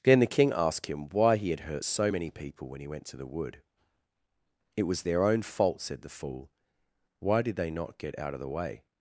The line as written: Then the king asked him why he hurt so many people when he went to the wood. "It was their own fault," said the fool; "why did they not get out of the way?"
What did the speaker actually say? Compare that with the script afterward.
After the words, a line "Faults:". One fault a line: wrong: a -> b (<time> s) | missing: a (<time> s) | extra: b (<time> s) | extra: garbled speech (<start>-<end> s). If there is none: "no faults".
Then the king asked him why he had hurt so many people when he went to the wood. "It was their own fault," said the fool; "why did they not get out of the way?"
Faults:
extra: had (1.5 s)